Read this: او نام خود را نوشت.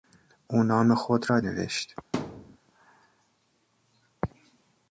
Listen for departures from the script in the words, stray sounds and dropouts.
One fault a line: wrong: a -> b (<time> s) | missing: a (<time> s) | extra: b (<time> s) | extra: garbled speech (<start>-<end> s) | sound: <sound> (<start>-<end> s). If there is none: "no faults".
sound: thud (2.1-2.6 s)